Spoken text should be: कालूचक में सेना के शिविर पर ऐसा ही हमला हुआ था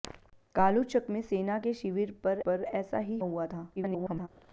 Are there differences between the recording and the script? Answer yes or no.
yes